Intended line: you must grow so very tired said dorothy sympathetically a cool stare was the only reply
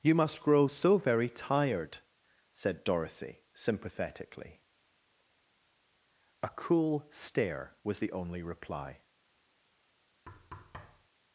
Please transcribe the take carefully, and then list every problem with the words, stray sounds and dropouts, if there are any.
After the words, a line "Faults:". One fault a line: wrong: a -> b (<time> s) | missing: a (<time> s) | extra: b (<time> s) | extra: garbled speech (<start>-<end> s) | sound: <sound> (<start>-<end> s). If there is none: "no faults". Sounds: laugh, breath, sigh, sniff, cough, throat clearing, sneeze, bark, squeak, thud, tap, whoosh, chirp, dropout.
you must grow so very tired said dorothy sympathetically a cool stare was the only reply
Faults:
sound: thud (10.3-11.1 s)